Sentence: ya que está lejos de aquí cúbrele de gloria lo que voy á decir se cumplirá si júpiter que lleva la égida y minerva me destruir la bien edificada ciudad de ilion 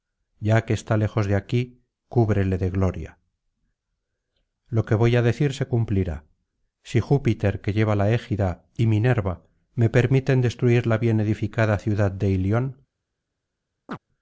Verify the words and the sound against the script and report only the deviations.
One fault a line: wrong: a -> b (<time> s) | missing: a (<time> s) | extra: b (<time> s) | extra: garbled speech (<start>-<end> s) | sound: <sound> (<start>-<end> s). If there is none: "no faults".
extra: permiten (9.9 s)
sound: chirp (13.9-14.0 s)